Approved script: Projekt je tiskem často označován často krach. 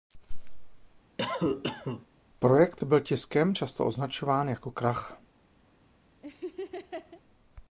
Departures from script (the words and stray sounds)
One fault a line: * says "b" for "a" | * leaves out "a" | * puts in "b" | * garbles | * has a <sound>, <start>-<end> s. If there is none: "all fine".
* has a cough, 1.2-2.1 s
* says "byl" for "je"
* says "jako" for "často"
* has a laugh, 6.2-7.2 s